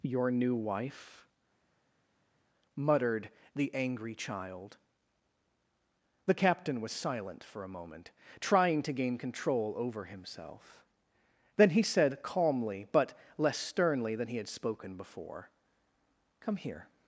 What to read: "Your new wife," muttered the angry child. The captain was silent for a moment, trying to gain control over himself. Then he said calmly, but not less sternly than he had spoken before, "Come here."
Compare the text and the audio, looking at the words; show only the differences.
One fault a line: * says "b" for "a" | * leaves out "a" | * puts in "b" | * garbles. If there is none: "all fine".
* leaves out "not"